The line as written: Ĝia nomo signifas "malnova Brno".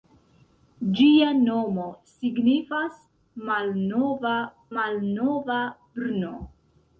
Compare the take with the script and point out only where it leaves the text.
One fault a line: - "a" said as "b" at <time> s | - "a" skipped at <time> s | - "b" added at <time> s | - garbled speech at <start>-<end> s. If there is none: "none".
- "malnova" added at 4.8 s